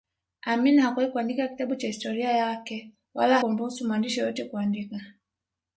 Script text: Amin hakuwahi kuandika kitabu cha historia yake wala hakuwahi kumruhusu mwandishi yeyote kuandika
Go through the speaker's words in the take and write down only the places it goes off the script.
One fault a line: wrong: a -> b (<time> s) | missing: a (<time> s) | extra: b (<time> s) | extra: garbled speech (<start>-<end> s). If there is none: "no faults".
missing: hakuwahi (3.4 s)